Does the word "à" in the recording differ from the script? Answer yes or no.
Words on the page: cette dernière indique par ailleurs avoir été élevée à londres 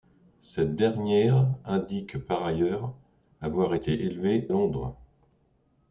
yes